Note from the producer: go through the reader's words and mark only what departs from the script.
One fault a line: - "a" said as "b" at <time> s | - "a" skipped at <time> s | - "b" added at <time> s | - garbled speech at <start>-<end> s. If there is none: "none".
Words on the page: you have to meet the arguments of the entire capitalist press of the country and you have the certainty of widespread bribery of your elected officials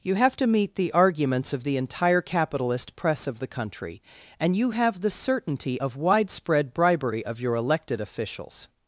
none